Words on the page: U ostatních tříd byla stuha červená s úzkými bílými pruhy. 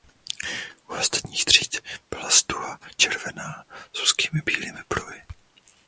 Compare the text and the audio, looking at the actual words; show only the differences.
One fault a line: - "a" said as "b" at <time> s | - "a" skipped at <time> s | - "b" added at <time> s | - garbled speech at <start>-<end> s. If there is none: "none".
none